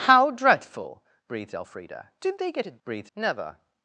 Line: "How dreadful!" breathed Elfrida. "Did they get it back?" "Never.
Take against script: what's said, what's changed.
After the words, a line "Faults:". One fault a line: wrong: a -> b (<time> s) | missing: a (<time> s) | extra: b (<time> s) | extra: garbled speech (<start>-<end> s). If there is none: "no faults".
"How dreadful!" breathed Elfrida. "Did they get it breathed?" "Never.
Faults:
wrong: back -> breathed (2.8 s)